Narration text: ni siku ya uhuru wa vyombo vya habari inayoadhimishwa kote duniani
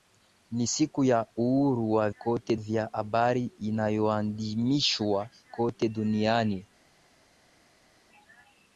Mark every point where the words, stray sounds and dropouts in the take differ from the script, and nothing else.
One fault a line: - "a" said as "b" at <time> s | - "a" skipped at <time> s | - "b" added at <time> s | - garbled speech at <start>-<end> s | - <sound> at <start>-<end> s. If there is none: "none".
- "vyombo" said as "kote" at 2.2 s